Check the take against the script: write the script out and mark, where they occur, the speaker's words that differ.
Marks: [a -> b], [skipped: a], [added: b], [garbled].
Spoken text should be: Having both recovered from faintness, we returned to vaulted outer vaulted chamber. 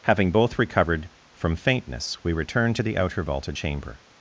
Having both recovered from faintness, we returned to [vaulted -> the] outer vaulted chamber.